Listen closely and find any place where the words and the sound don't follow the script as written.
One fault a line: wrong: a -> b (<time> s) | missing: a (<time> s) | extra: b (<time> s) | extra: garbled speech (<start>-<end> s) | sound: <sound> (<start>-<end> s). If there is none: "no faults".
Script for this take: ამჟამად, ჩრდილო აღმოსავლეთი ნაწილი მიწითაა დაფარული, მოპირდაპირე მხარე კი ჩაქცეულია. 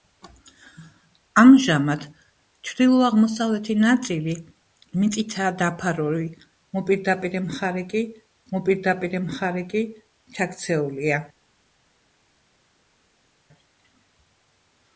extra: მოპირდაპირე მხარე კი (8.6 s)